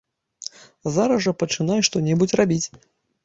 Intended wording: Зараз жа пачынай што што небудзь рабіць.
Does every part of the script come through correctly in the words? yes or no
no